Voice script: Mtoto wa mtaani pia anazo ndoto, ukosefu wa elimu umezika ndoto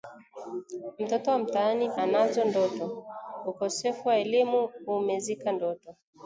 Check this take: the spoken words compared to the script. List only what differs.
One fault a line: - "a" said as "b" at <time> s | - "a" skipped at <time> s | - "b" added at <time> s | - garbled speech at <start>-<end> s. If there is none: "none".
- "pia" skipped at 1.9 s